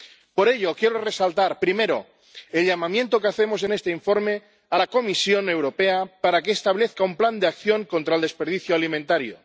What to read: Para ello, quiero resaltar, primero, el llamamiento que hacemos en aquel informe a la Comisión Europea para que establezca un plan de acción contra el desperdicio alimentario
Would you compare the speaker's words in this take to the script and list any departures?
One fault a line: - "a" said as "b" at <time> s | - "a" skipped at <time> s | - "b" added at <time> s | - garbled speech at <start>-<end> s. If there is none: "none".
- "Para" said as "Por" at 0.3 s
- "aquel" said as "este" at 3.7 s